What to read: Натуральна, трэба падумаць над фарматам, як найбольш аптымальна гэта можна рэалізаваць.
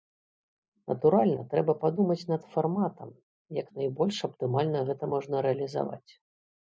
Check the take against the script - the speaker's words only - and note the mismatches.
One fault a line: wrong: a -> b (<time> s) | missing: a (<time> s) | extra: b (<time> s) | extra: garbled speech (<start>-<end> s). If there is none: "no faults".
no faults